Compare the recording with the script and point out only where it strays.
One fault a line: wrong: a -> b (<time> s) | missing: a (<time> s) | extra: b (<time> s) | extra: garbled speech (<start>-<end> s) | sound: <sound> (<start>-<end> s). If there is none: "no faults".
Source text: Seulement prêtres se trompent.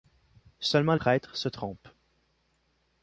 no faults